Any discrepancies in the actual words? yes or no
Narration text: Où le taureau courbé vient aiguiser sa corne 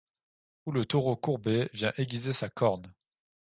no